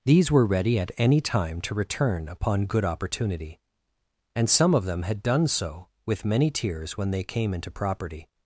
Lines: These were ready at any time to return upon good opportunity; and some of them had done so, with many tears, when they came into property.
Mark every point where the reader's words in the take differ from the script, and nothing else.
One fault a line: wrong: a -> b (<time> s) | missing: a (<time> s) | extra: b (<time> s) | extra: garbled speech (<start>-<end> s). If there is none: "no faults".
no faults